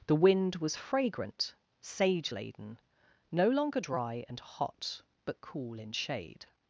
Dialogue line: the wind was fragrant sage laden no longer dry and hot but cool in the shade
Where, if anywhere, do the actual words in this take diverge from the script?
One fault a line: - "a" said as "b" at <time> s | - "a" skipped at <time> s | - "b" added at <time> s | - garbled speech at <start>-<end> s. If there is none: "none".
- "the" skipped at 5.9 s